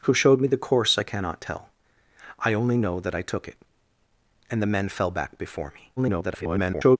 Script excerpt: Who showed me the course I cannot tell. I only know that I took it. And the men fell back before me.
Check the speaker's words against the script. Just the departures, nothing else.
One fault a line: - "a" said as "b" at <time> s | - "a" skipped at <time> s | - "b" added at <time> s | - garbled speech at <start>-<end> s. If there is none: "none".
- garbled speech at 6.0-7.0 s